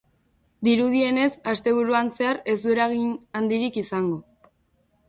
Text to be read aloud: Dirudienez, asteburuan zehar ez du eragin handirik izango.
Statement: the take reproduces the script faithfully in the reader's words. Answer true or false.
true